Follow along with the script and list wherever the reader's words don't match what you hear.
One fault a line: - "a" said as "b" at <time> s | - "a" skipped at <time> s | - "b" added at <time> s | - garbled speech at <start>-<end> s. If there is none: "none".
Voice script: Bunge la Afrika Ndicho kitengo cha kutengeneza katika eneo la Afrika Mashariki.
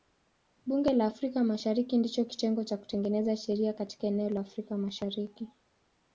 - "Mashariki" added at 1.4 s
- "sheria" added at 3.4 s